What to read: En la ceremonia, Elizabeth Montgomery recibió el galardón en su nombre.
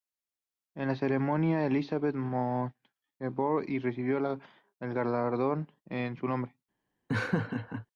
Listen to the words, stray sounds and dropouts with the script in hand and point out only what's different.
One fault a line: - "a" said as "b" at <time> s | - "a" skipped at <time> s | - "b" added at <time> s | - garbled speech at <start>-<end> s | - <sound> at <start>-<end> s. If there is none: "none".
- laugh at 7.1-7.9 s